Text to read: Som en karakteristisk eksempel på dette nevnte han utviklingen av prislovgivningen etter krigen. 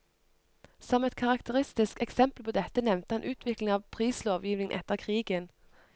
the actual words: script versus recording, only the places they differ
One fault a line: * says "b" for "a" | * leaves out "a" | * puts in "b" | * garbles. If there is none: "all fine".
* says "et" for "en"